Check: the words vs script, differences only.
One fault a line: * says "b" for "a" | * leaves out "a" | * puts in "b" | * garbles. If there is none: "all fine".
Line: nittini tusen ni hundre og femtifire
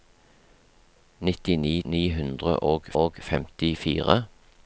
* leaves out "tusen"
* puts in "og"